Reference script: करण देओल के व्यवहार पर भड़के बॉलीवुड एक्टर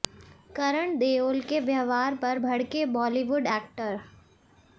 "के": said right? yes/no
yes